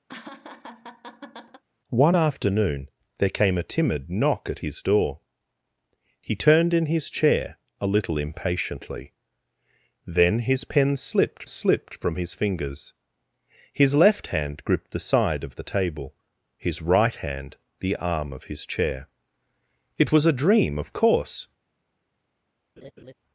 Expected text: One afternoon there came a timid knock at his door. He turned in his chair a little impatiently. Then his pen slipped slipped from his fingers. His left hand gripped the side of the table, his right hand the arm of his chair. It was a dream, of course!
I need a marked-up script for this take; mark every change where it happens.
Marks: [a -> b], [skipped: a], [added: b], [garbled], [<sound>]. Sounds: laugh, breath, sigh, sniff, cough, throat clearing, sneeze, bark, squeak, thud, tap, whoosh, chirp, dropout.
[laugh] One afternoon there came a timid knock at his door. He turned in his chair a little impatiently. Then his pen slipped slipped from his fingers. His left hand gripped the side of the table, his right hand the arm of his chair. It was a dream, of course! [laugh]